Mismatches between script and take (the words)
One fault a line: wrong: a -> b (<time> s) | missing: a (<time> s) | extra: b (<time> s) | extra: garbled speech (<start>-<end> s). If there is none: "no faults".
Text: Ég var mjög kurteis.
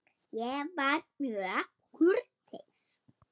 no faults